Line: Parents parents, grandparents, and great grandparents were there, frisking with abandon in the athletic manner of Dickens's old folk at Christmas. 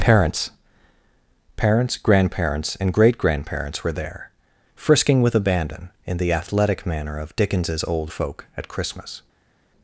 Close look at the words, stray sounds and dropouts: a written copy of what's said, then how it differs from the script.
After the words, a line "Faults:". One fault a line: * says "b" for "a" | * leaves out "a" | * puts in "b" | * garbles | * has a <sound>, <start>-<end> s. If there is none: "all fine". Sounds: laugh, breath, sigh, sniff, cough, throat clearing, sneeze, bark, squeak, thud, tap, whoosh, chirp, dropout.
Parents parents, grandparents, and great grandparents were there, frisking with abandon in the athletic manner of Dickens's old folk at Christmas.
Faults:
all fine